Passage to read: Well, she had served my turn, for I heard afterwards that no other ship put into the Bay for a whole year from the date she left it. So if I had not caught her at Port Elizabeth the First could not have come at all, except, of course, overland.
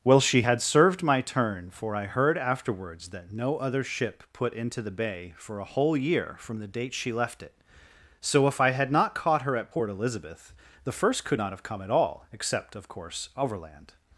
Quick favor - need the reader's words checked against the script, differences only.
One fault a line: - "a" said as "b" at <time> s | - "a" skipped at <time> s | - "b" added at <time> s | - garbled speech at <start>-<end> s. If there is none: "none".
none